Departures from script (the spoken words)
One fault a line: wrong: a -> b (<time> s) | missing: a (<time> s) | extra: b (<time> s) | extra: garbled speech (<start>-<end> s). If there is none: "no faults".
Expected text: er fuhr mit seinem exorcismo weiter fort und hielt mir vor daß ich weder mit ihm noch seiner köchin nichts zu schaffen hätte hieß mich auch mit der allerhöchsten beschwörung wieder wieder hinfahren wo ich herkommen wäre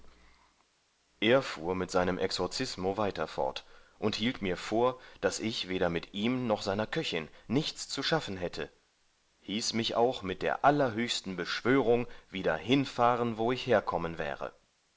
missing: wieder (12.6 s)